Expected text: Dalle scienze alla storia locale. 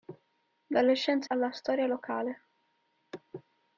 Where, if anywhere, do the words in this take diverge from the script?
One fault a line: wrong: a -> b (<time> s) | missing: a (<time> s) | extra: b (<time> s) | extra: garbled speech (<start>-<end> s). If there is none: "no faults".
no faults